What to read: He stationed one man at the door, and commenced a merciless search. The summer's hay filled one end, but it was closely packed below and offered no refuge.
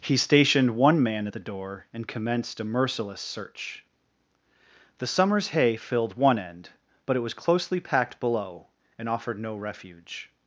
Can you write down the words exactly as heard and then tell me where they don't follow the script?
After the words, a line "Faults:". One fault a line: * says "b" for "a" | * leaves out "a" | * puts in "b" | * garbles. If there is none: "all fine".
He stationed one man at the door, and commenced a merciless search. The summer's hay filled one end, but it was closely packed below and offered no refuge.
Faults:
all fine